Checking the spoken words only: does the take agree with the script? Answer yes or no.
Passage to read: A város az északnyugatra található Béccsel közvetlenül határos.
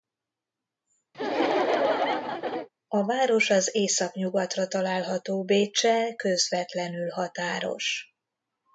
yes